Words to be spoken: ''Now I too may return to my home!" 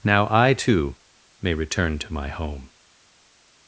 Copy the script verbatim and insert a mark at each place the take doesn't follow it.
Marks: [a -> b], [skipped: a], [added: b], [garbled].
''Now I too may return to my home!"